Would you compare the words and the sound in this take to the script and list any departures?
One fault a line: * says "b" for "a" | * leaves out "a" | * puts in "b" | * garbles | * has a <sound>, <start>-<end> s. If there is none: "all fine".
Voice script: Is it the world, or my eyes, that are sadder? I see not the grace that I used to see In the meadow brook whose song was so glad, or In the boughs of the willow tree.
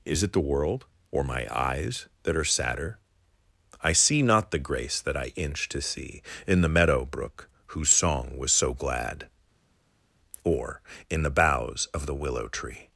* says "inch" for "used"